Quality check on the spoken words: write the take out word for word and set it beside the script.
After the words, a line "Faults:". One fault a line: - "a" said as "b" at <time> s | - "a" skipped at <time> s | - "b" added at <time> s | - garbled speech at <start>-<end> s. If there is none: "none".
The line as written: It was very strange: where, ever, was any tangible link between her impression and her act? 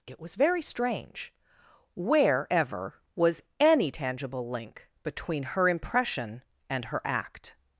It was very strange: where, ever, was any tangible link between her impression and her act?
Faults:
none